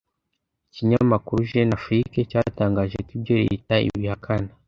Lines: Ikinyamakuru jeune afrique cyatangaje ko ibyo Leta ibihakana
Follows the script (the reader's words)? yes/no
yes